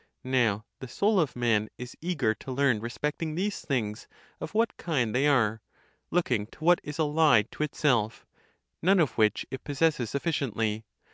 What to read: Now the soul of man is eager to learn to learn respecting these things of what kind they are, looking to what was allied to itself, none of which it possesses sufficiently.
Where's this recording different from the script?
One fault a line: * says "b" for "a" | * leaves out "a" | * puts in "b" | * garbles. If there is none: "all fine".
* leaves out "to learn"
* says "is" for "was"